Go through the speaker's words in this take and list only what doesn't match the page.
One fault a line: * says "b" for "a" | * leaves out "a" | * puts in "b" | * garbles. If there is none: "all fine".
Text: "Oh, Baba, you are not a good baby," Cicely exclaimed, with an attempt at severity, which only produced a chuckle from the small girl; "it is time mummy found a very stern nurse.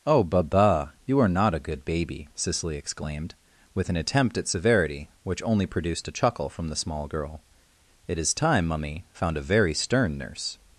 all fine